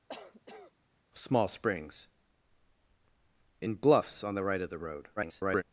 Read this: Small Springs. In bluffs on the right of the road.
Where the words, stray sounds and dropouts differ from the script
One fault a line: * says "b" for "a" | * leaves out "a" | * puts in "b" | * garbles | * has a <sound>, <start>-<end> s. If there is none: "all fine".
* has a cough, 0.1-0.7 s
* garbles